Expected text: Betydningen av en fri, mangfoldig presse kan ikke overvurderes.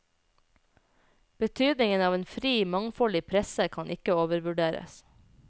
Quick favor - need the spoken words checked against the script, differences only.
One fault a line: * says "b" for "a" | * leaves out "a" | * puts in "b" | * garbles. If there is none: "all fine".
all fine